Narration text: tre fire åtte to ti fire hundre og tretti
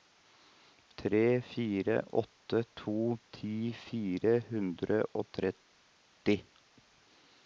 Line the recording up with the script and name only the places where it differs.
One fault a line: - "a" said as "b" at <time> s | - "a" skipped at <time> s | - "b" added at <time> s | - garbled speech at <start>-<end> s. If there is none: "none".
none